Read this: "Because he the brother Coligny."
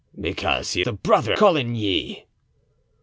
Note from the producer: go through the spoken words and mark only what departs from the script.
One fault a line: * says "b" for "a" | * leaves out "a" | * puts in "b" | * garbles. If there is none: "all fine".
all fine